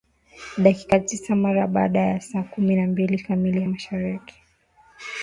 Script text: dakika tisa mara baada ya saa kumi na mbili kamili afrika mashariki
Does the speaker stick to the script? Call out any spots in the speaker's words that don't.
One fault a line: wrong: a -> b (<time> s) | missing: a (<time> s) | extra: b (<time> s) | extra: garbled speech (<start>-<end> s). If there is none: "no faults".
missing: afrika (3.6 s)